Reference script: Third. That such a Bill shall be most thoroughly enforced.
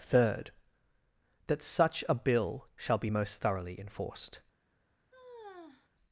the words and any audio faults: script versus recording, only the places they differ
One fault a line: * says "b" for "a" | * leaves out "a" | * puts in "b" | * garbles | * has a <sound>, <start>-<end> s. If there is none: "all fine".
* has a sigh, 5.1-5.9 s